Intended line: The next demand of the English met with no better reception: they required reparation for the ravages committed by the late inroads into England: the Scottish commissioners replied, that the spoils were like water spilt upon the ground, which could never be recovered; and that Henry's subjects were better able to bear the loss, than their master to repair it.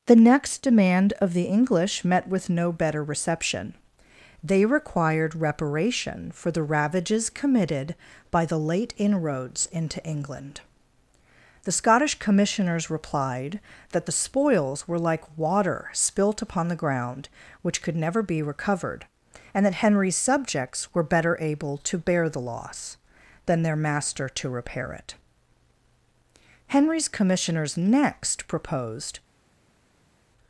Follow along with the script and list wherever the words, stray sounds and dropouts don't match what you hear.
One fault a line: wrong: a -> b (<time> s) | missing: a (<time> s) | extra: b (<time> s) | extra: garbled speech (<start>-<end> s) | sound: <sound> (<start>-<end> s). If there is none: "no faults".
extra: Henry's commissioners next proposed (26.7 s)